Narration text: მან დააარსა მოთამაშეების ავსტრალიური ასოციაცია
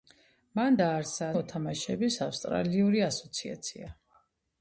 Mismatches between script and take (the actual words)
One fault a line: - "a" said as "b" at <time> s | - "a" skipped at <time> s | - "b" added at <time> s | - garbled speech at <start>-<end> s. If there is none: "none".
none